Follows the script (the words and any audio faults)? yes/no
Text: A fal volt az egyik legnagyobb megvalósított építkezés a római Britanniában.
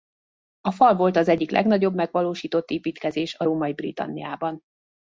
yes